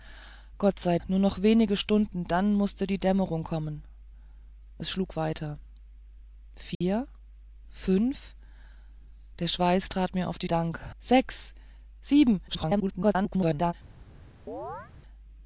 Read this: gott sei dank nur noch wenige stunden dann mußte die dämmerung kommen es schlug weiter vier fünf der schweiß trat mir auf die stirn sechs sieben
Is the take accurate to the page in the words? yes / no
no